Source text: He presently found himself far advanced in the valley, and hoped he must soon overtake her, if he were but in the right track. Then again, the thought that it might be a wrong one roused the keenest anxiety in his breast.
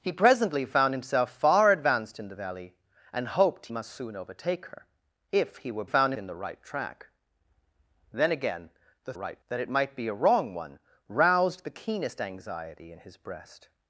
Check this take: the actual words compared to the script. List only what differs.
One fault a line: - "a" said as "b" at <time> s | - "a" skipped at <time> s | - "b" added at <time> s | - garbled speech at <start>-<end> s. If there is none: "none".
- "he" skipped at 3.7 s
- "but" said as "found" at 5.8 s
- "thought" said as "right" at 9.2 s